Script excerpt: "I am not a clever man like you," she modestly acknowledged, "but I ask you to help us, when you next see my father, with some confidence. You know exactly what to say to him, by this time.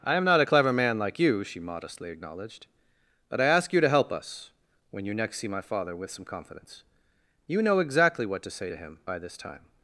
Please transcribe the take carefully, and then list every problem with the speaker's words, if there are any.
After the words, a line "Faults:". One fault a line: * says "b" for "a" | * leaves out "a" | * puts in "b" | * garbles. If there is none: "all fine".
"I am not a clever man like you," she modestly acknowledged, "but I ask you to help us, when you next see my father, with some confidence. You know exactly what to say to him, by this time.
Faults:
all fine